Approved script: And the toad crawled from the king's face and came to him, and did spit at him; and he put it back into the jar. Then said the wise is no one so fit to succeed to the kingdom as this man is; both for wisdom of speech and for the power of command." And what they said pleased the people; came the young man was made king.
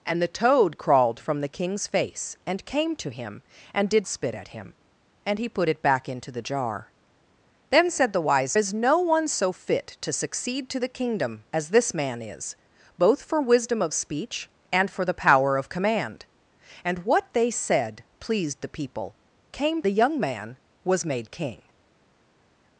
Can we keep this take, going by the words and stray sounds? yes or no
yes